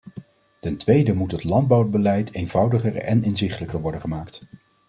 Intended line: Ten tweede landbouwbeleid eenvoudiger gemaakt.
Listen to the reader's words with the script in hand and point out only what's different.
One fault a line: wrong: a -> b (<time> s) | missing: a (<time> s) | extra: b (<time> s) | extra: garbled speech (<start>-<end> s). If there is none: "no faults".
extra: moet het (1.1 s)
extra: en inzichtelijker worden (3.0 s)